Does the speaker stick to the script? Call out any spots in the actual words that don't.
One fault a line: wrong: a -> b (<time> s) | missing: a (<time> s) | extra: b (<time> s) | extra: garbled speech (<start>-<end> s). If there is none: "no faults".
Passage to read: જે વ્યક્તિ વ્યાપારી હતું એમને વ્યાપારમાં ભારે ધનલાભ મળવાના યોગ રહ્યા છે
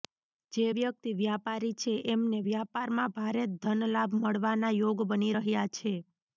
wrong: હતું -> છે (1.8 s)
extra: બની (5.1 s)